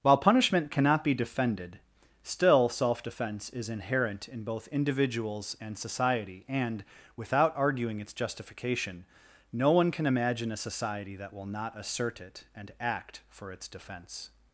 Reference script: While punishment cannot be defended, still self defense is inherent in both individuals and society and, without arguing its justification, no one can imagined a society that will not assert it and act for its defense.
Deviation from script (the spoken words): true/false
true